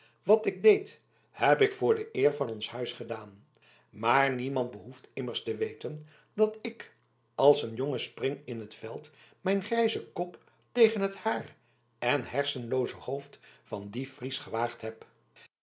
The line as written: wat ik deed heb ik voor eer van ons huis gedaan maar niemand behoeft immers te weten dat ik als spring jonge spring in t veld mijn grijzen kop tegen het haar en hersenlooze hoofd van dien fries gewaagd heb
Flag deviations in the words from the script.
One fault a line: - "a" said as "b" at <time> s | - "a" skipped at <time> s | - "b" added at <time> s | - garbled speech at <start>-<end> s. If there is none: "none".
- "de" added at 1.9 s
- "spring" said as "een" at 7.6 s